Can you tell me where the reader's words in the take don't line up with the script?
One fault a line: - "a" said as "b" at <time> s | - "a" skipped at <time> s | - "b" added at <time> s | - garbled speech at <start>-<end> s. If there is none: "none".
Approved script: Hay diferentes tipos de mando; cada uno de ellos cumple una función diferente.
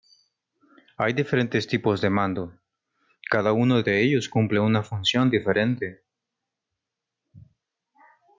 none